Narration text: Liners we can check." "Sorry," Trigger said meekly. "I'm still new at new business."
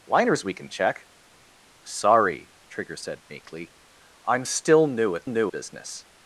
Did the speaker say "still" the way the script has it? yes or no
yes